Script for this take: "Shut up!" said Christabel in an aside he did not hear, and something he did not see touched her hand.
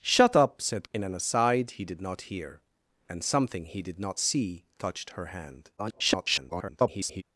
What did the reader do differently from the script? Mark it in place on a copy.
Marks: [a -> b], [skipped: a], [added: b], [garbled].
"Shut up!" said [skipped: Christabel] in an aside he did not hear, and something he did not see touched her hand. [garbled]